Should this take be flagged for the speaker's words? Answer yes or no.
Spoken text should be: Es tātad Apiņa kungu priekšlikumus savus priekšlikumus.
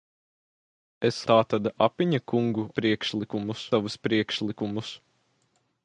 no